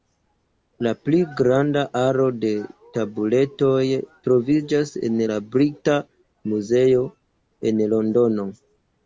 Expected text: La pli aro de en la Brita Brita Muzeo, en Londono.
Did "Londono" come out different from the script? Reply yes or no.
no